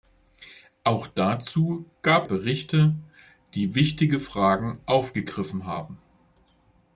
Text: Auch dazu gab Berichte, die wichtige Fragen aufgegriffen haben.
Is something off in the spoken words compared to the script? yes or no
no